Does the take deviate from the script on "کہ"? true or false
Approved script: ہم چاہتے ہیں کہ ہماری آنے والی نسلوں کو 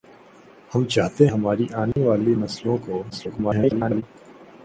true